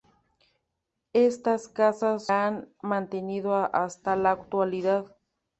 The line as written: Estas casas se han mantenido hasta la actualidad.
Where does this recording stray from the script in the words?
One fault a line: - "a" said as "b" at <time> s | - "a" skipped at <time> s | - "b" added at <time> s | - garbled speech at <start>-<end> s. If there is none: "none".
- "se" skipped at 2.3 s